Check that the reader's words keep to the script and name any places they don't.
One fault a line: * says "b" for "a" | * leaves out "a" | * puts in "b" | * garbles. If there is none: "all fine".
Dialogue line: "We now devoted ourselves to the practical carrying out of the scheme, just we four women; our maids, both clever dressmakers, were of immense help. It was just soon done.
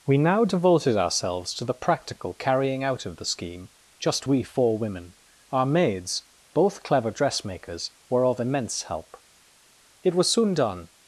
* leaves out "just"